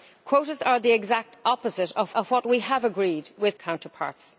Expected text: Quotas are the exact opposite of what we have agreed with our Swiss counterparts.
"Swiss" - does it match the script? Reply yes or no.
no